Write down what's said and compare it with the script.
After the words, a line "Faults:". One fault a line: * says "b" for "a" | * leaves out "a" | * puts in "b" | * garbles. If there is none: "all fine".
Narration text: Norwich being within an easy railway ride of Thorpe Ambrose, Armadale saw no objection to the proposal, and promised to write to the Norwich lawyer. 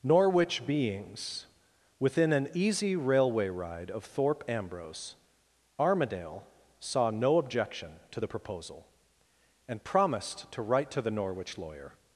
Norwich beings within an easy railway ride of Thorpe Ambrose, Armadale saw no objection to the proposal, and promised to write to the Norwich lawyer.
Faults:
* says "beings" for "being"